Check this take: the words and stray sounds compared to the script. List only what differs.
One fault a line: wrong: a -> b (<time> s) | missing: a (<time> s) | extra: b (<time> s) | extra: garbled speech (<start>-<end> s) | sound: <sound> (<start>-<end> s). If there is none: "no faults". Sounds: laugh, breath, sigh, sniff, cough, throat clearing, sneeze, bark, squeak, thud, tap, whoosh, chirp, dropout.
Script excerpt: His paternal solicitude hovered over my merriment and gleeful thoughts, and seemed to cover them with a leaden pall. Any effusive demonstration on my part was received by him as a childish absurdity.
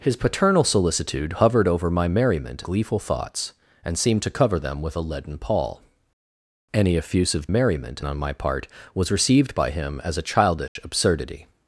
missing: and (2.6 s)
wrong: demonstration -> merriment (7.5 s)
sound: dropout (10.7-10.8 s)